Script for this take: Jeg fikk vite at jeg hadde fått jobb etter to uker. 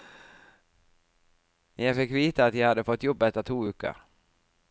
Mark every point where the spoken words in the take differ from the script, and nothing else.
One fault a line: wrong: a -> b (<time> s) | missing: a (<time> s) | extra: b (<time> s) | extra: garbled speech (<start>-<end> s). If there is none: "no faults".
no faults